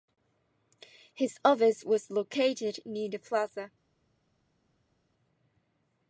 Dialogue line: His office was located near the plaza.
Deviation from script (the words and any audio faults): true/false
false